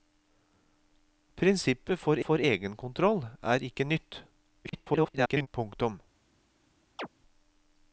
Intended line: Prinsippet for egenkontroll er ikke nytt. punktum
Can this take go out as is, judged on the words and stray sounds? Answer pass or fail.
fail